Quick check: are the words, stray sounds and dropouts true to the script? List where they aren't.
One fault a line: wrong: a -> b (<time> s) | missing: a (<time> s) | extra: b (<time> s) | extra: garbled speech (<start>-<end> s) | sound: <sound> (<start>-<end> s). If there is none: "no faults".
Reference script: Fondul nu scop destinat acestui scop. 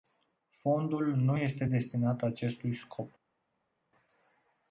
wrong: scop -> este (1.3 s)